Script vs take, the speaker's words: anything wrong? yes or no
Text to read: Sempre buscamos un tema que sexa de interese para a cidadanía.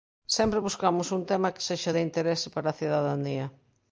no